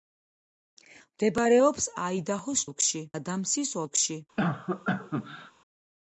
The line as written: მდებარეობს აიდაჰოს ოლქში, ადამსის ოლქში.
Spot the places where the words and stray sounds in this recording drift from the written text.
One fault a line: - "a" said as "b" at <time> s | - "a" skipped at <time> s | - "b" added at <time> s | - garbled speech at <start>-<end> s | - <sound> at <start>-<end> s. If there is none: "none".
- cough at 4.4-5.5 s